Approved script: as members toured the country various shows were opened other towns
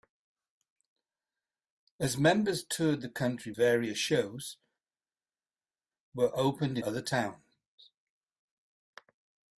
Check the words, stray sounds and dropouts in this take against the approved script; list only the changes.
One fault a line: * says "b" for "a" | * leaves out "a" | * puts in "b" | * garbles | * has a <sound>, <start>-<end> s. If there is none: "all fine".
all fine